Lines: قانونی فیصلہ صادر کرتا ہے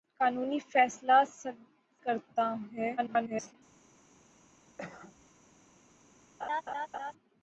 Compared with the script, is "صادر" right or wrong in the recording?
wrong